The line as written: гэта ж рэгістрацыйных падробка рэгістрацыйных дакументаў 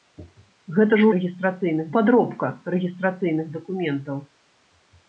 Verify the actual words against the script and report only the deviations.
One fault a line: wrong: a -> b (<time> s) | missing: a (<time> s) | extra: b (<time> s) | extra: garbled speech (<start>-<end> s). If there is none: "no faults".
no faults